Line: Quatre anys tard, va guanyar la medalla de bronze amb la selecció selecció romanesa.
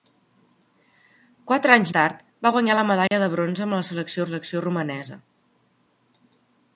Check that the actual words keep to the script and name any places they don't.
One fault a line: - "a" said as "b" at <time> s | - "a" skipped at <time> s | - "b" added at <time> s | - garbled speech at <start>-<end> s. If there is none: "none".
none